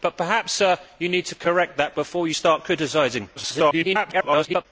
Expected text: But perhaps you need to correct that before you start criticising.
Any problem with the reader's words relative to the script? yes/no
yes